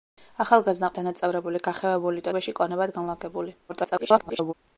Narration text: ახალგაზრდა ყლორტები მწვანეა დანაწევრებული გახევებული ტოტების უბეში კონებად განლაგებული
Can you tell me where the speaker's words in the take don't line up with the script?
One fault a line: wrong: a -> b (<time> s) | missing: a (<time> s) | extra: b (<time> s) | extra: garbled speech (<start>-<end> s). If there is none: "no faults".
missing: ყლორტები მწვანეა (0.9 s)
missing: ტოტების (2.3 s)
extra: garbled speech (3.7-4.5 s)